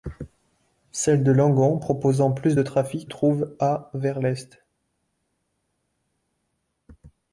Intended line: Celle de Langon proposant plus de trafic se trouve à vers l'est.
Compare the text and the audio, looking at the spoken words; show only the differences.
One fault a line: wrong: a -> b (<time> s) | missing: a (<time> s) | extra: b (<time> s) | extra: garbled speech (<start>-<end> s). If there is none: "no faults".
missing: se (3.1 s)